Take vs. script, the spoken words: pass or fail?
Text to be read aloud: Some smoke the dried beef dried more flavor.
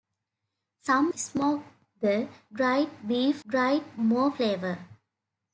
pass